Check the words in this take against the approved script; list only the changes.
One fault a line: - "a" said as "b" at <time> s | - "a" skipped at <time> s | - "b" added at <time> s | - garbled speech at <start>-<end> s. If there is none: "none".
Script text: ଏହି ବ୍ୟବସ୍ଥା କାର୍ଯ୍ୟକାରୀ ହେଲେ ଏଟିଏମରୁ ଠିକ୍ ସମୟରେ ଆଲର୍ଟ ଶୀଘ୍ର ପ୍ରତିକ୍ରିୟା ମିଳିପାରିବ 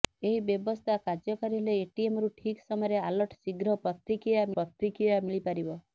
- "ପ୍ରତିକ୍ରିୟା" added at 4.5 s